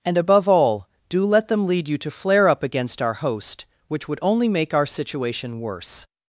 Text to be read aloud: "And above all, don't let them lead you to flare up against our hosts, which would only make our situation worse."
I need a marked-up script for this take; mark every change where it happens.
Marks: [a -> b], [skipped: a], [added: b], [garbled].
"And above all, [don't -> do] let them lead you to flare up against our [hosts, -> host] which would only make our situation worse."